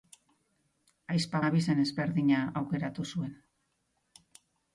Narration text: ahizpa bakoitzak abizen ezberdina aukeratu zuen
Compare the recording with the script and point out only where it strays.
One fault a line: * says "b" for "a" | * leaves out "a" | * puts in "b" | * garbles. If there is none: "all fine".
* leaves out "bakoitzak"